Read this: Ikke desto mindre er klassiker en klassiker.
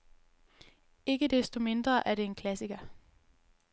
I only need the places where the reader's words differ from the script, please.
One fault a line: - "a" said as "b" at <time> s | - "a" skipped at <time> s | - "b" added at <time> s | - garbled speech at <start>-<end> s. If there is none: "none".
- "klassiker" said as "det" at 2.1 s